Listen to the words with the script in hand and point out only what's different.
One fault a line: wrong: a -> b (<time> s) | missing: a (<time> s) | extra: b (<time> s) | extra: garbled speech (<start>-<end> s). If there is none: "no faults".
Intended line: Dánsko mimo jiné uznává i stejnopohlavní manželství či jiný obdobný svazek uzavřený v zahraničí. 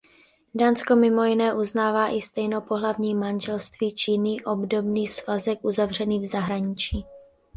no faults